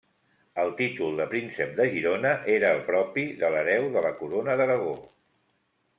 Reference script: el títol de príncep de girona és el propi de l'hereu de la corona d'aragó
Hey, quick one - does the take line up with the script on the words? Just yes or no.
no